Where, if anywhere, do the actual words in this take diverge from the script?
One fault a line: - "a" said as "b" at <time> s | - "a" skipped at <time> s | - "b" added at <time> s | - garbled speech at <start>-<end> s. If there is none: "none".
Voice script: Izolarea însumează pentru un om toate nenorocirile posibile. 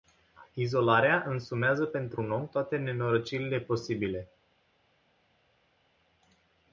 none